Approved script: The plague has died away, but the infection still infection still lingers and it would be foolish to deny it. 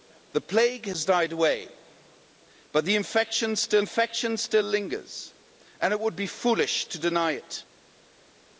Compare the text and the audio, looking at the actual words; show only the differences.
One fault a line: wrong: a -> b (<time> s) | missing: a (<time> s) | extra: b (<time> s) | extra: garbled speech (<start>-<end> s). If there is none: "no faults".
no faults